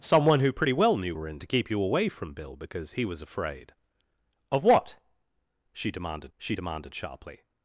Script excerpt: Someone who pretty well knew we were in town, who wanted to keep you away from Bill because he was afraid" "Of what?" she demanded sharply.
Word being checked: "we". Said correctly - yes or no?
no